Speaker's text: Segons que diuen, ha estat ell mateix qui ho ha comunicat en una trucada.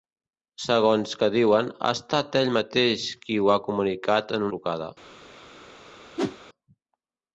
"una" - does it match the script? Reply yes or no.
no